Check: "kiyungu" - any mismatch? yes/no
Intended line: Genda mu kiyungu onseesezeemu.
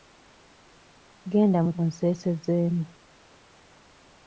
yes